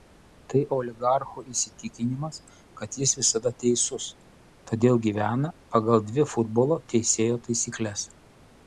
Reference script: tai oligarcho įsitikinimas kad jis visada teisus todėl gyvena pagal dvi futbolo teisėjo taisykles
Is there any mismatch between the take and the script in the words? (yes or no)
no